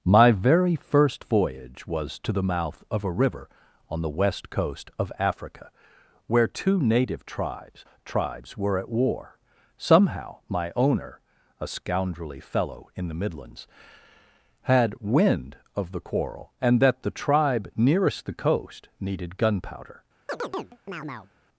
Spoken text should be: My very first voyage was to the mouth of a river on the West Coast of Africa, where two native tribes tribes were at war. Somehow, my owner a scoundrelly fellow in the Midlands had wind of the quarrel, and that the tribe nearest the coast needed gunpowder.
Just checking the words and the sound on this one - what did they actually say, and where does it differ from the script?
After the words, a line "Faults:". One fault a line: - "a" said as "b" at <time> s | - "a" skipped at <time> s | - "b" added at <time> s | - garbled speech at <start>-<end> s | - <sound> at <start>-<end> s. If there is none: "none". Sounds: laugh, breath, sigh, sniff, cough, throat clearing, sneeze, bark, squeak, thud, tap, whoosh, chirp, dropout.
My very first voyage was to the mouth of a river on the West Coast of Africa, where two native tribes tribes were at war. Somehow, my owner a scoundrelly fellow in the Midlands had wind of the quarrel, and that the tribe nearest the coast needed gunpowder.
Faults:
- chirp at 20.3-21.3 s